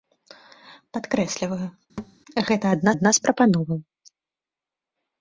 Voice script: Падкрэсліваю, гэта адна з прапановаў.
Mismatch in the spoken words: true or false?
true